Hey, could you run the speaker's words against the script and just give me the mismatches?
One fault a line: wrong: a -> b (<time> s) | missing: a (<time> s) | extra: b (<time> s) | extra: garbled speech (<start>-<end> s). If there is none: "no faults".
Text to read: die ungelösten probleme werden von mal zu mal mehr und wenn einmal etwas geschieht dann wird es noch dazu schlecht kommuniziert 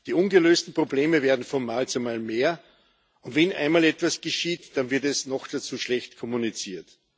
no faults